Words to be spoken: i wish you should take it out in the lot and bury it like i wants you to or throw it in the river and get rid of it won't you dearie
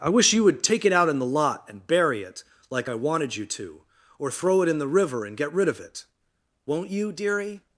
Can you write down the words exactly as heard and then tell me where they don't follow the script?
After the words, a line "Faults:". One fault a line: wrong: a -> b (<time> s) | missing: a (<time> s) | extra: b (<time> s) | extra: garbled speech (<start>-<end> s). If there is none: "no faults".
i wish you would take it out in the lot and bury it like i wanted you to or throw it in the river and get rid of it won't you dearie
Faults:
wrong: should -> would (0.4 s)
wrong: wants -> wanted (2.9 s)